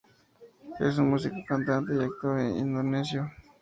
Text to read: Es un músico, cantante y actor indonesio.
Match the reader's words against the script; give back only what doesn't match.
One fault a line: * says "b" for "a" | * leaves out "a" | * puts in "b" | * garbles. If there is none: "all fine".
all fine